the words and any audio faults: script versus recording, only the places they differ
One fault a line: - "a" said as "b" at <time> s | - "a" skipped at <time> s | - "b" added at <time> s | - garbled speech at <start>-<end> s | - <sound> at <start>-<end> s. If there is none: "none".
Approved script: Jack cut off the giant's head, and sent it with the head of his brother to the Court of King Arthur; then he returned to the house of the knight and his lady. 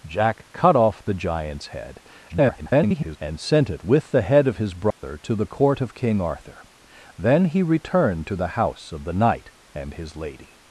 - garbled speech at 2.3-3.2 s
- dropout at 4.9-5.0 s